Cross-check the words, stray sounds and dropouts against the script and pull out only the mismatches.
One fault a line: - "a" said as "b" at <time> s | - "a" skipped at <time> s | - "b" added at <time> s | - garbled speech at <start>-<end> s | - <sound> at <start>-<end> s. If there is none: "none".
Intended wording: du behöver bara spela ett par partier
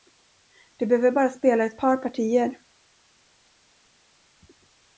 none